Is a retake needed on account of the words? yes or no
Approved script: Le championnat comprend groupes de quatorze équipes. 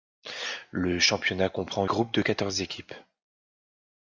no